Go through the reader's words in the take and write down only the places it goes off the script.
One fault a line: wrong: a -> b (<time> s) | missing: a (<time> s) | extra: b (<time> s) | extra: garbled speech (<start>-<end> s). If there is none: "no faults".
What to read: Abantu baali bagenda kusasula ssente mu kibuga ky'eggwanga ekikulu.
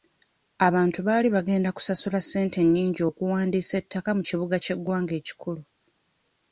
extra: nnyingi okuwandiisa ettaka (2.6 s)